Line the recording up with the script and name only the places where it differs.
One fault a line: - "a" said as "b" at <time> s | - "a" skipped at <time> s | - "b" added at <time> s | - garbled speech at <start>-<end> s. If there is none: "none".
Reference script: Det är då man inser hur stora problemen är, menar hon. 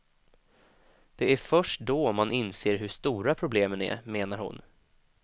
- "först" added at 1.4 s